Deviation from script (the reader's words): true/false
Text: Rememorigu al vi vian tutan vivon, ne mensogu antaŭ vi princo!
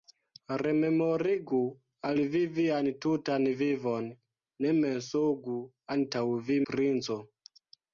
false